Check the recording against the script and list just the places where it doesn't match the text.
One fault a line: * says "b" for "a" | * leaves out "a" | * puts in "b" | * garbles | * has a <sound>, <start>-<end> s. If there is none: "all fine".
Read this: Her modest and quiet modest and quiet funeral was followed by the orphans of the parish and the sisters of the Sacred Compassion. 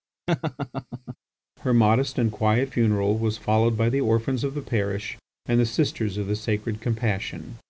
* has a laugh, 0.3-1.2 s
* leaves out "modest and quiet"